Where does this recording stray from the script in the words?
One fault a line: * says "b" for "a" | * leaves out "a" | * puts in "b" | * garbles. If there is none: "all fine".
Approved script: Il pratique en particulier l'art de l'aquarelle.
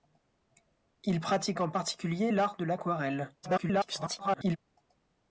* garbles